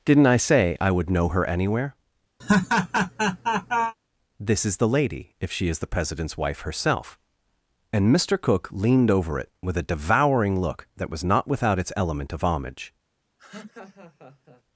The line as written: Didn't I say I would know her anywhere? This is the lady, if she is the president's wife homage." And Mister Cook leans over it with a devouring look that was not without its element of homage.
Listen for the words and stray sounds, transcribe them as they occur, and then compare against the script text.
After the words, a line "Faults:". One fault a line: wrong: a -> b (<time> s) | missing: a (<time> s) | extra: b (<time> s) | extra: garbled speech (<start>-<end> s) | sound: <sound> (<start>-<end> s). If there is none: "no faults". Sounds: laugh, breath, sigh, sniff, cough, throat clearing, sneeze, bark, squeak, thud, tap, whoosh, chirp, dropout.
Didn't I say I would know her anywhere? This is the lady, if she is the president's wife herself." And Mister Cook leaned over it with a devouring look that was not without its element of homage.
Faults:
sound: laugh (2.4-3.9 s)
wrong: homage -> herself (6.6 s)
wrong: leans -> leaned (8.7 s)
sound: laugh (13.4-14.6 s)